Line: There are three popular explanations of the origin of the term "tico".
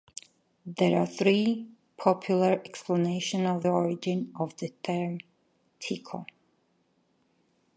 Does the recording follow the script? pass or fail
fail